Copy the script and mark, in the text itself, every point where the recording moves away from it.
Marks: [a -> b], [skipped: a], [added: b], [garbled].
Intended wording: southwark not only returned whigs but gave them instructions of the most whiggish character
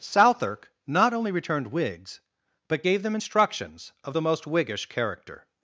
southwark not only returned whigs but gave them instructions of the most whiggish character